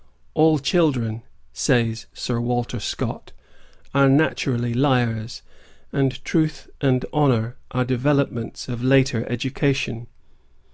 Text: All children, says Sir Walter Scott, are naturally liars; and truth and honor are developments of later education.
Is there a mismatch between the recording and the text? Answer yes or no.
no